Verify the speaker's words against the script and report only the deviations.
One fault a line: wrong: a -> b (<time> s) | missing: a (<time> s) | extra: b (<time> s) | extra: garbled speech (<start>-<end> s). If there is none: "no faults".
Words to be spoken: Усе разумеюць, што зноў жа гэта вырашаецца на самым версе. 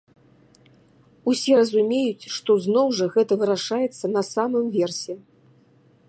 no faults